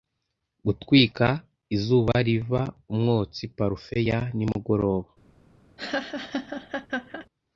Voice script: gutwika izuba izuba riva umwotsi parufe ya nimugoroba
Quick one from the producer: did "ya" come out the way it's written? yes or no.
yes